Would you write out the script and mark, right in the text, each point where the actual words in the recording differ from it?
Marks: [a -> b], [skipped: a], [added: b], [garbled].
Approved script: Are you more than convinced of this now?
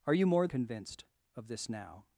Are you more [skipped: than] convinced of this now?